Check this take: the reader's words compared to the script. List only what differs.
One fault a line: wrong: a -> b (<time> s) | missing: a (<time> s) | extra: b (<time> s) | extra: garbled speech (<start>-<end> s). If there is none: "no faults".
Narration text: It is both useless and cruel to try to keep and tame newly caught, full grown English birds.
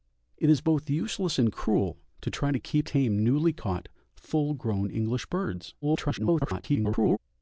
missing: and (2.9 s)
extra: garbled speech (5.8-7.2 s)